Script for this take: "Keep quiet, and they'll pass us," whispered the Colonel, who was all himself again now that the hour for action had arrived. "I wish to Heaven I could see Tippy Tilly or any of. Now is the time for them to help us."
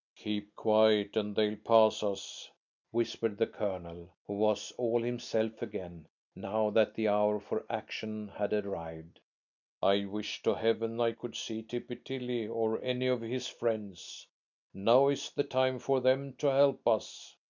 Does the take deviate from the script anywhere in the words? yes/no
yes